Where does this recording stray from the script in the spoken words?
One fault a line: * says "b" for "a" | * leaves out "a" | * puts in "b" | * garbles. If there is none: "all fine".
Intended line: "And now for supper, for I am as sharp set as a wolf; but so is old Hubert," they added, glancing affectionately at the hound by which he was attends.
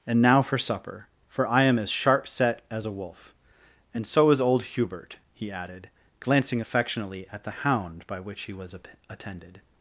* says "and" for "but"
* says "he" for "they"
* says "attended" for "attends"